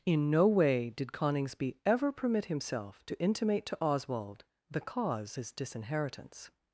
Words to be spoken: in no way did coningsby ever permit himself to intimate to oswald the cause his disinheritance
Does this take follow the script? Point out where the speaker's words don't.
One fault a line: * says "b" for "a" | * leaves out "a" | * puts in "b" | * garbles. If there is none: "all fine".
all fine